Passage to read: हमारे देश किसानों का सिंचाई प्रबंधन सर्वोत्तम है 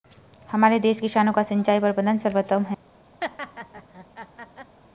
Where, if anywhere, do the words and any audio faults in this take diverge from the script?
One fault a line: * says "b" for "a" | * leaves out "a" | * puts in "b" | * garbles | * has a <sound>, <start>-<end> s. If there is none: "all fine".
* has a laugh, 3.2-4.8 s